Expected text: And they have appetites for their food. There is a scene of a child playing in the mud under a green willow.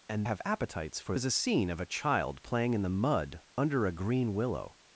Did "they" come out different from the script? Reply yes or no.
yes